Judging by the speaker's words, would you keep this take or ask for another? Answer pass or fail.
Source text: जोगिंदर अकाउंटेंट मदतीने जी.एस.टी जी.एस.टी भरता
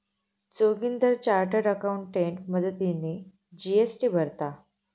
fail